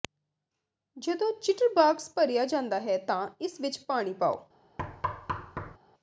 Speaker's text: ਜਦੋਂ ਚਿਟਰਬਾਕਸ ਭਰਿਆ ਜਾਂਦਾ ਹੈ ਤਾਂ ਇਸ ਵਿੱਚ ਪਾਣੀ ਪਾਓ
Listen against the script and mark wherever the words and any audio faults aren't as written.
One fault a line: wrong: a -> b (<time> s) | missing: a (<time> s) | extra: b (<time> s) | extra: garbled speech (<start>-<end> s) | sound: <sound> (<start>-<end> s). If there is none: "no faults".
sound: thud (4.8-5.8 s)